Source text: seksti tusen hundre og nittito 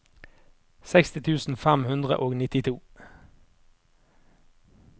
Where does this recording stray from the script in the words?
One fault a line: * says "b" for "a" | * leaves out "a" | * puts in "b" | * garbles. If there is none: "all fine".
* puts in "fem"